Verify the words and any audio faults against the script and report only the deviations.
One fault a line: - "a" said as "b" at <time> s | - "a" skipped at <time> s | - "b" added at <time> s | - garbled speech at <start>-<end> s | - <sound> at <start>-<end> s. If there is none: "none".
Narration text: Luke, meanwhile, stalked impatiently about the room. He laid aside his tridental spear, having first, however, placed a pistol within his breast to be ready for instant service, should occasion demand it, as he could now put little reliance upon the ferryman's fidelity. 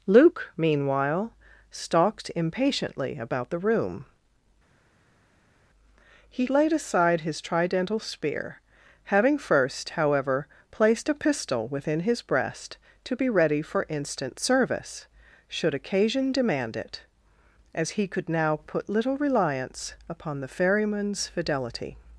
none